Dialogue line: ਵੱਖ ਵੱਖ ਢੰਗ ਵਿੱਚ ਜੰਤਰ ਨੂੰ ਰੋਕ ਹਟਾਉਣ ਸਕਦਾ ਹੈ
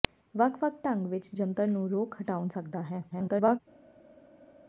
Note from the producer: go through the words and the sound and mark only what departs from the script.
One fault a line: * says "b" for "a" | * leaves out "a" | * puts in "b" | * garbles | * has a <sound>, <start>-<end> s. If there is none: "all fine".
* garbles